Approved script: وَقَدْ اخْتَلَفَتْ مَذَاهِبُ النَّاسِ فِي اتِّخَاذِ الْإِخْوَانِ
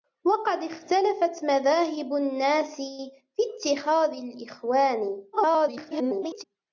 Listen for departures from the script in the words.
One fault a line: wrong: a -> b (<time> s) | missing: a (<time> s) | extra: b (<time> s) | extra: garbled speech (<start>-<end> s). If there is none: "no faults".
extra: garbled speech (5.3-6.4 s)